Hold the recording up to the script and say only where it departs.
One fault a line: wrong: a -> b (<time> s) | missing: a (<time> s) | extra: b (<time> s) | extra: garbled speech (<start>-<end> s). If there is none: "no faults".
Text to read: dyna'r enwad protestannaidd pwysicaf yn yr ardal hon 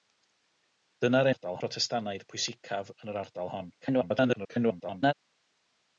wrong: enwad -> ardal (1.3 s)
extra: garbled speech (3.8-5.1 s)